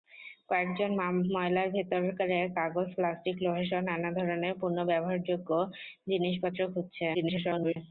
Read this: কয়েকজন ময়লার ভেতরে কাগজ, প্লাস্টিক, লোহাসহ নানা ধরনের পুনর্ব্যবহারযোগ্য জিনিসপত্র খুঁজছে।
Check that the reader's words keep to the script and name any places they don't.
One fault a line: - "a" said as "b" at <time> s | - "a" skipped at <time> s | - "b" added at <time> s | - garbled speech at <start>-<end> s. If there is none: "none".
- garbled speech at 7.1-7.8 s